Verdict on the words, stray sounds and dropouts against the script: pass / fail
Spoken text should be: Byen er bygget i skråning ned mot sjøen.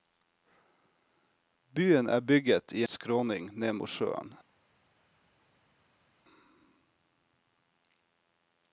pass